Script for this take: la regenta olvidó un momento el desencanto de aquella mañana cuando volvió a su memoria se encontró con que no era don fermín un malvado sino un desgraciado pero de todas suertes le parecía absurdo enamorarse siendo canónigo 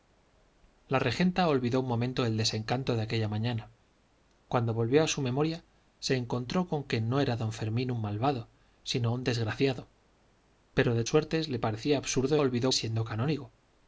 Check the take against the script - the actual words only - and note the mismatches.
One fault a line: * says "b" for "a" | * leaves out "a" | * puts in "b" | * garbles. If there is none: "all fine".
* leaves out "todas"
* says "olvidó" for "enamorarse"